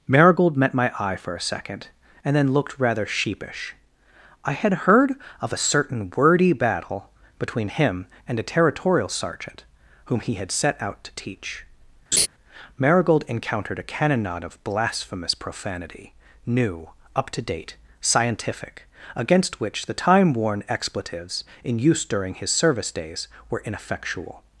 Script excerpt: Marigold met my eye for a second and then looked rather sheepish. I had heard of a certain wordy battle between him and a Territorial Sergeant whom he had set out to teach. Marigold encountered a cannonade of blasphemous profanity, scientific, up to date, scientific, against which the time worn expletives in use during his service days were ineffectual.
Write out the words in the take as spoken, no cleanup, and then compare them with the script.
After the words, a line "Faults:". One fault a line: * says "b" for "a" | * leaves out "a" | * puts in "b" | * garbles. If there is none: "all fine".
Marigold met my eye for a second and then looked rather sheepish. I had heard of a certain wordy battle between him and a Territorial Sergeant whom he had set out to teach. Marigold encountered a cannonade of blasphemous profanity, new, up to date, scientific, against which the time worn expletives in use during his service days were ineffectual.
Faults:
* says "new" for "scientific"